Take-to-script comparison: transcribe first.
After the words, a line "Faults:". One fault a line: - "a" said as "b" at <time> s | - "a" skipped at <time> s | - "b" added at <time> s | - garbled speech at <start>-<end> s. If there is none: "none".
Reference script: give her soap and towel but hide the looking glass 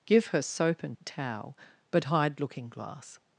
give her soap and towel but hide looking glass
Faults:
- "the" skipped at 2.4 s